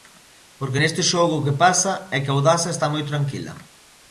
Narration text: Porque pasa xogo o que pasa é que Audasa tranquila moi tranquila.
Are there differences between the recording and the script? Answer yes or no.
yes